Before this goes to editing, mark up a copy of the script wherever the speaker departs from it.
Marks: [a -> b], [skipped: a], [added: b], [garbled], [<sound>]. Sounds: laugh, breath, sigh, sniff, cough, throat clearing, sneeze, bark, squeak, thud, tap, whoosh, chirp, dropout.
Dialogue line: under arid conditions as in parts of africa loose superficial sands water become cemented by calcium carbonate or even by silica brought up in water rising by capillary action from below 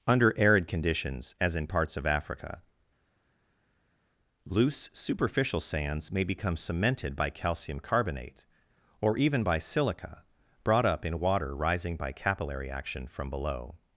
under arid conditions as in parts of africa loose superficial sands [water -> may] become cemented by calcium carbonate or even by silica brought up in water rising by capillary action from below